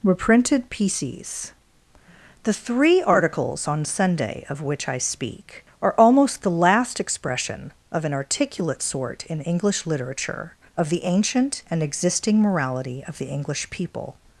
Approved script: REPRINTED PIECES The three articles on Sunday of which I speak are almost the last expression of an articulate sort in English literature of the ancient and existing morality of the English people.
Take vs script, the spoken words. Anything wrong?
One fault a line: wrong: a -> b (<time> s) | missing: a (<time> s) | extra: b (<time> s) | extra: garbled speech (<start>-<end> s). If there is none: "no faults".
no faults